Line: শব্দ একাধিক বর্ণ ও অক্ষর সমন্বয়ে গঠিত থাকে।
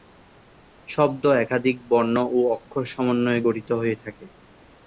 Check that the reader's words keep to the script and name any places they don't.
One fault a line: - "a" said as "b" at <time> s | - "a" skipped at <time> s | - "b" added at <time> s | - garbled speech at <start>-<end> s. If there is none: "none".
- "হয়ে" added at 3.7 s